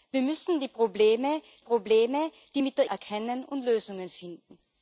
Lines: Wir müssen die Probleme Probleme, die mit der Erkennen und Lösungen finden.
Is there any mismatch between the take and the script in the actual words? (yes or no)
no